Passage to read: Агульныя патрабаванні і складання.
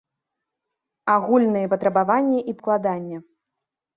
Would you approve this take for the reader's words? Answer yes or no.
yes